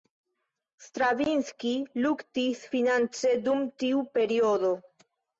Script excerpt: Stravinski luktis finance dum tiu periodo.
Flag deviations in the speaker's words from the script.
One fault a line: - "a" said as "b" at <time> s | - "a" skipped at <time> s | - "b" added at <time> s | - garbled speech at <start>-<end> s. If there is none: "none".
none